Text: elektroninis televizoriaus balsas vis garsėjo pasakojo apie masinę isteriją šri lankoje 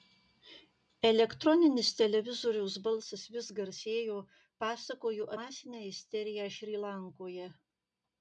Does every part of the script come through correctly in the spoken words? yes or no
no